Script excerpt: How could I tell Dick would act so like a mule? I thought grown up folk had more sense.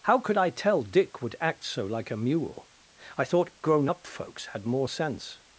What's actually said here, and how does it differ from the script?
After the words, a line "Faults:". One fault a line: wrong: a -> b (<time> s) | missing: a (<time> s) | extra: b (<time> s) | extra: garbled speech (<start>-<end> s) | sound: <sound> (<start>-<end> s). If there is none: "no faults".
How could I tell Dick would act so like a mule? I thought grown up folks had more sense.
Faults:
wrong: folk -> folks (4.1 s)